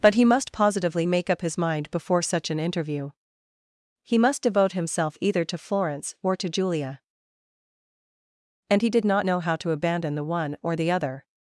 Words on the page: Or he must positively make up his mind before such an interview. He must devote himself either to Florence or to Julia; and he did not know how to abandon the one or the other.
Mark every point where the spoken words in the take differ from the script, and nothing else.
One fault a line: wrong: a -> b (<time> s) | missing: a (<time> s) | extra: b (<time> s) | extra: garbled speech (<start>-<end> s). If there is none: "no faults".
wrong: Or -> But (0.0 s)